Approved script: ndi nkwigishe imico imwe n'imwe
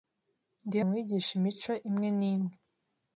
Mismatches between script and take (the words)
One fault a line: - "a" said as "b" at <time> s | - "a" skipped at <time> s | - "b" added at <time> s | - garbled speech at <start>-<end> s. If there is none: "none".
none